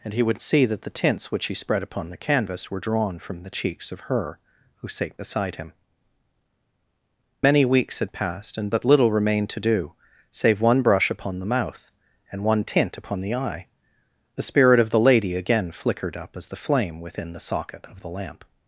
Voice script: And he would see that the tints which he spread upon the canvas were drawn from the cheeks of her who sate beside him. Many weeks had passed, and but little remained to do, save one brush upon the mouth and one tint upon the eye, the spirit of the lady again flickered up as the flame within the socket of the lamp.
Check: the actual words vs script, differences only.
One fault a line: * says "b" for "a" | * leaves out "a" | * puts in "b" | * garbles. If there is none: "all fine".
all fine